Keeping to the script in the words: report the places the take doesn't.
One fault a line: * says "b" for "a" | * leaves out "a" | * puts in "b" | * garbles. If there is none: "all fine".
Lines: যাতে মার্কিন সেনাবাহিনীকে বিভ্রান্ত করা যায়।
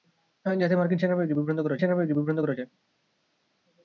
* puts in "সেনাবাহিনীকে বিভ্রান্ত করা"